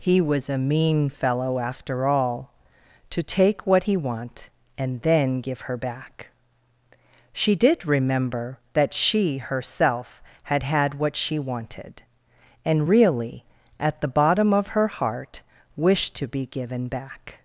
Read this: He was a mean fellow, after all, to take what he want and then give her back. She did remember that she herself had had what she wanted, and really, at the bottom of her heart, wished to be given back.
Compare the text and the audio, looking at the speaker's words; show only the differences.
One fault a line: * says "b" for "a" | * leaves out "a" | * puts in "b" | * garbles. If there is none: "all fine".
all fine